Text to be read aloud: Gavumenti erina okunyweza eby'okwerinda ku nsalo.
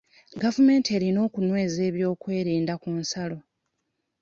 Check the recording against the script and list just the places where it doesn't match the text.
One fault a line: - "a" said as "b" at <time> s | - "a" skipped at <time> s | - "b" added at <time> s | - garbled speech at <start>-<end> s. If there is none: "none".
none